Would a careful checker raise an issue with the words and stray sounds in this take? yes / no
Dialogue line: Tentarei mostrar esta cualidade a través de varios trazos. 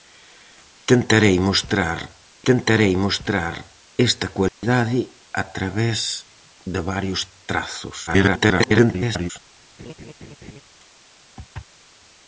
yes